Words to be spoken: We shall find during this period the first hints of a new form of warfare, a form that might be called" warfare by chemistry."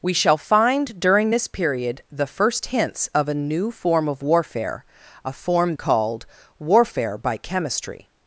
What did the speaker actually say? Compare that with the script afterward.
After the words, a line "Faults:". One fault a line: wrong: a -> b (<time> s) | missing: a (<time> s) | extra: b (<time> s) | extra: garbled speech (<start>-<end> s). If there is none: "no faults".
We shall find during this period the first hints of a new form of warfare, a form called" warfare by chemistry."
Faults:
missing: that might be (5.7 s)